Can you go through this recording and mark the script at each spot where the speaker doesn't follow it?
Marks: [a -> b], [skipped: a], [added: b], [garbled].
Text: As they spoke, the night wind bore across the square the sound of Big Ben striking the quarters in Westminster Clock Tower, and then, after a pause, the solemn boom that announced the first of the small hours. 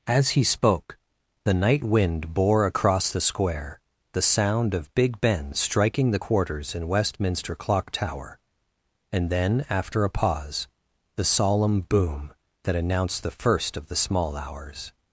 As [they -> he] spoke, the night wind bore across the square the sound of Big Ben striking the quarters in Westminster Clock Tower, and then, after a pause, the solemn boom that announced the first of the small hours.